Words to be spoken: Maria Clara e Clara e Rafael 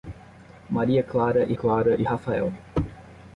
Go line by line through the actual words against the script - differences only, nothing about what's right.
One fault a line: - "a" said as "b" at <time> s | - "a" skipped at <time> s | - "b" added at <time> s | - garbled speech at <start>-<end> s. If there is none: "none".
none